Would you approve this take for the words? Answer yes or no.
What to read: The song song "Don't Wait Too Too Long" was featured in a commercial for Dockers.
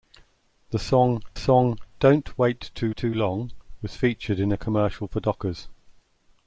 yes